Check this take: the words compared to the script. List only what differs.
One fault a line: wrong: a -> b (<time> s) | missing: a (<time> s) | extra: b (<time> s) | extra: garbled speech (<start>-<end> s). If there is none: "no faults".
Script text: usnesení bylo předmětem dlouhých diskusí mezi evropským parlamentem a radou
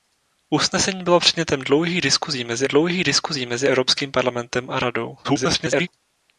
extra: dlouhých diskusí mezi (2.6 s)
extra: garbled speech (5.2-5.9 s)